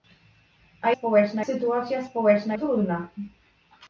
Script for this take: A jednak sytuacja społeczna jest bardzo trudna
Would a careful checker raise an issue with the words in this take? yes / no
yes